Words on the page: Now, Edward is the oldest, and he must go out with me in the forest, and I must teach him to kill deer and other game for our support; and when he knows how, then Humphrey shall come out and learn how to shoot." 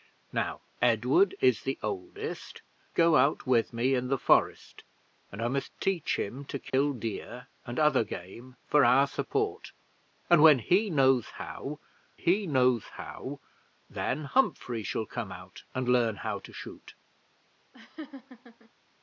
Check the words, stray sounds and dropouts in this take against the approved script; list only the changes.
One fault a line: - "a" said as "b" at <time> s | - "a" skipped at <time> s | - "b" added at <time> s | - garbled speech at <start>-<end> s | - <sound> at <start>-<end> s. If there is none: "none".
- "and he must" skipped at 2.6 s
- dropout at 6.7-6.7 s
- "he knows how" added at 12.1 s
- laugh at 17.7-18.7 s